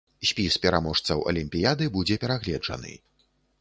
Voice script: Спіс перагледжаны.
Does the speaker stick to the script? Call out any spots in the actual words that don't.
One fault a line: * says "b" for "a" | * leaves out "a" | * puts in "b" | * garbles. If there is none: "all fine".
* puts in "пераможцаў алімпіяды будзе"